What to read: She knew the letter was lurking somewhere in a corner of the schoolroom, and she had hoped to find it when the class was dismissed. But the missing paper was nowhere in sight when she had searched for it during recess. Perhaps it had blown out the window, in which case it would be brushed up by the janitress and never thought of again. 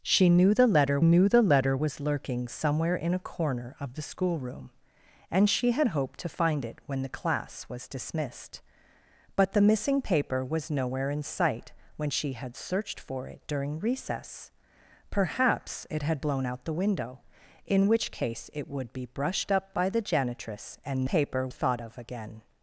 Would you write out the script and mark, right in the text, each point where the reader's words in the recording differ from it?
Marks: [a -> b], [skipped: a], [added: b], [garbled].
She knew the letter [added: knew the letter] was lurking somewhere in a corner of the schoolroom, and she had hoped to find it when the class was dismissed. But the missing paper was nowhere in sight when she had searched for it during recess. Perhaps it had blown out the window, in which case it would be brushed up by the janitress and [never -> paper] thought of again.